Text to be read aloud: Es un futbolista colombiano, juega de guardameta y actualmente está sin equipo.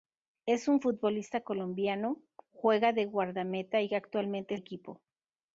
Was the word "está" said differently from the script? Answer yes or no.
yes